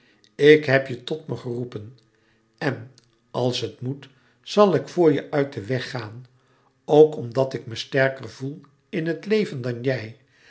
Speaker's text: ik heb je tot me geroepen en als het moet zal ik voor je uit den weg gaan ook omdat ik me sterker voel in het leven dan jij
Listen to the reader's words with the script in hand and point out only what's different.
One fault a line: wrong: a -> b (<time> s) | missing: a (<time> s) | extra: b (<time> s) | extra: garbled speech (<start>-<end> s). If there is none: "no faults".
no faults